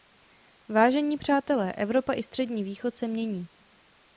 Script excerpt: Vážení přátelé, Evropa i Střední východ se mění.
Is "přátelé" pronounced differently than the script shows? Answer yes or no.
no